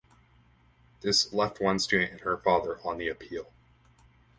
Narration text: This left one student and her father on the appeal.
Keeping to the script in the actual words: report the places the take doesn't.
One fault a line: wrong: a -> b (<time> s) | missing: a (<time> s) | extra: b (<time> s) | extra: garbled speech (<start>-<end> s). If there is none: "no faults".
no faults